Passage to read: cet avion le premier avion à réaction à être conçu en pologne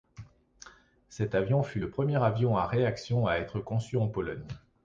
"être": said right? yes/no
yes